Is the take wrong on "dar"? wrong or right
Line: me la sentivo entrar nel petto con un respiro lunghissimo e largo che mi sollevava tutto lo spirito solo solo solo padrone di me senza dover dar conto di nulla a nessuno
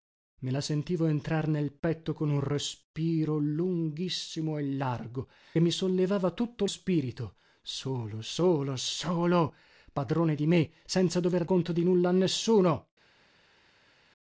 wrong